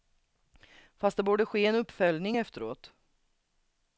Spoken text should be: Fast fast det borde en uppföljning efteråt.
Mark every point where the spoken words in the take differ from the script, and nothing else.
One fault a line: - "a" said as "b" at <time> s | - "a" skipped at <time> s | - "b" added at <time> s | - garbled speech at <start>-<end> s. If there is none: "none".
- "fast" skipped at 1.2 s
- "ske" added at 1.4 s